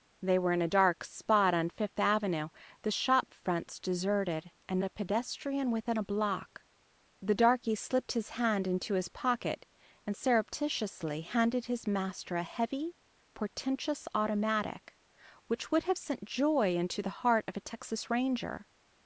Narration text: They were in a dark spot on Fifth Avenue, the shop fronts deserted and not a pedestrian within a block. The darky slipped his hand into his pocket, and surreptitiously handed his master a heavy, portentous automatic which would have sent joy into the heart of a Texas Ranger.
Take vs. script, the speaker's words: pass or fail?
fail